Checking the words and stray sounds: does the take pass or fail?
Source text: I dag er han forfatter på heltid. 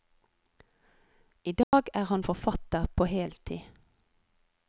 fail